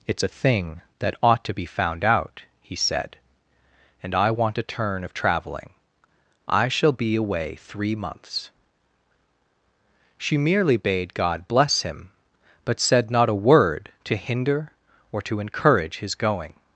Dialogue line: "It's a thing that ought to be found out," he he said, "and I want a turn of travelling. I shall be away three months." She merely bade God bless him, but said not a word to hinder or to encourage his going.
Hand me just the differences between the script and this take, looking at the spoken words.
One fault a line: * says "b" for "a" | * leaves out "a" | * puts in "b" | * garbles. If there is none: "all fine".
* leaves out "he"